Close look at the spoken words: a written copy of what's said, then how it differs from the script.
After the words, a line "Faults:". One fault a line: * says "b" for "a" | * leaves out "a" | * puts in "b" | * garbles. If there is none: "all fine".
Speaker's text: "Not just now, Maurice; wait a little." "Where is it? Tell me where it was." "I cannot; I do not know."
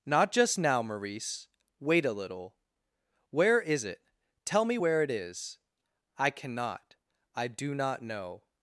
"Not just now, Maurice; wait a little." "Where is it? Tell me where it is." "I cannot; I do not know."
Faults:
* says "is" for "was"